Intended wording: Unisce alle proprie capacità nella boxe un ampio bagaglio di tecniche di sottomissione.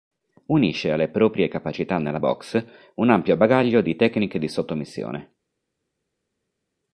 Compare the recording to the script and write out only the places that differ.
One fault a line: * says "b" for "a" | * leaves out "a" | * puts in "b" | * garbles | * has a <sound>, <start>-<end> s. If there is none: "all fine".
all fine